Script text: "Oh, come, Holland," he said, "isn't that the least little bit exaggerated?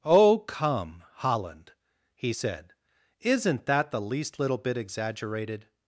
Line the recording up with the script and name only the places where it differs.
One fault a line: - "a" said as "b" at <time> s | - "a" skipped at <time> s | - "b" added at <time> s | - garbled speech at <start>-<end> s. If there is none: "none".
none